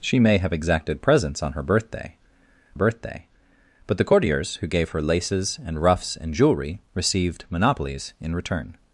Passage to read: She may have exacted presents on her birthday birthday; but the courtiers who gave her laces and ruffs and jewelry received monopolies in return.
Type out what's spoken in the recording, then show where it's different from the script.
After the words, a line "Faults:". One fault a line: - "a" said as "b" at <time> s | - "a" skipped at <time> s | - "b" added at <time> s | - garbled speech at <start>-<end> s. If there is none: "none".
She may have exacted presents on her birthday birthday; but the courtiers who gave her laces and ruffs and jewelry received monopolies in return.
Faults:
none